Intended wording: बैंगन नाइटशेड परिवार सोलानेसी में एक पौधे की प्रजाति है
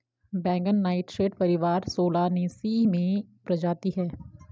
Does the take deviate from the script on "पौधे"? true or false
true